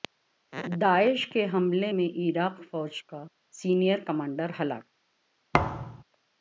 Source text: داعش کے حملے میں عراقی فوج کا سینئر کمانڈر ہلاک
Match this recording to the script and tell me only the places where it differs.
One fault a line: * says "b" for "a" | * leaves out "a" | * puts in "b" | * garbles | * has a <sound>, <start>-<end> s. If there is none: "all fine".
* has a thud, 5.5-6.0 s